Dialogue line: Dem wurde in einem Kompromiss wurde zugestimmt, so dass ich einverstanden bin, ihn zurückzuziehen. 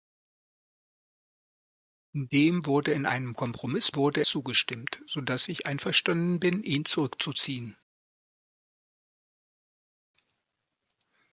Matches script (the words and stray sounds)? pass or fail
pass